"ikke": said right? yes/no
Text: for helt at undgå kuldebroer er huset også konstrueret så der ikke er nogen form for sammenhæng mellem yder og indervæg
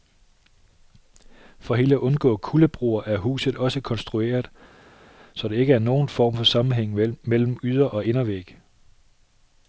yes